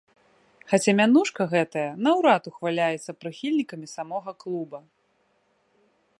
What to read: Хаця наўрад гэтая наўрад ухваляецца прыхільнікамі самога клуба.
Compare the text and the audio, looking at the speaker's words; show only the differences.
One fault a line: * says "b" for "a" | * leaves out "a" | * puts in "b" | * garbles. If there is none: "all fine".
* says "мянушка" for "наўрад"